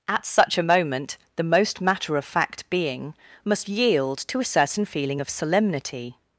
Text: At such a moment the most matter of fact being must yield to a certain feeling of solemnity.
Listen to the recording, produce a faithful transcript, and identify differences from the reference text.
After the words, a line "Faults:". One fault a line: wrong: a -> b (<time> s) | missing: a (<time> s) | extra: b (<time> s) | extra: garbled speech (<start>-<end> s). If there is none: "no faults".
At such a moment the most matter of fact being must yield to a certain feeling of solemnity.
Faults:
no faults